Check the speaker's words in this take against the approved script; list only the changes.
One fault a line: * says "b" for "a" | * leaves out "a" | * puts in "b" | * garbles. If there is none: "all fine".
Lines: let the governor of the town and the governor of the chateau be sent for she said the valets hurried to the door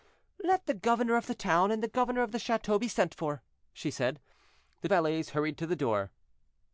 all fine